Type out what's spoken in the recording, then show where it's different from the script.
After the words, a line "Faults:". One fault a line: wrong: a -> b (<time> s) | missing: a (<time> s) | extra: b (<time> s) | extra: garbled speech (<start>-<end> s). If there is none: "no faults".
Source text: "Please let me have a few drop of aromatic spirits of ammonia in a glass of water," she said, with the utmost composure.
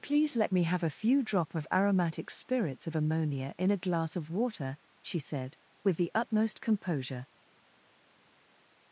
"Please let me have a few drop of aromatic spirits of ammonia in a glass of water," she said, with the utmost composure.
Faults:
no faults